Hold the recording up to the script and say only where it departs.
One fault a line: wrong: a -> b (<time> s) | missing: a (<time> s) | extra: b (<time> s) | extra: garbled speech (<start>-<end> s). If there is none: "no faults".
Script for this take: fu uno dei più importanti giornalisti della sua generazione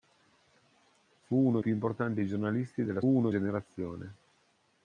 missing: dei (1.6 s)
wrong: sua -> uno (3.0 s)